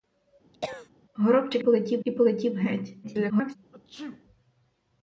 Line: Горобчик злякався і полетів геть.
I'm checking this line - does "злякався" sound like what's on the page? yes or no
no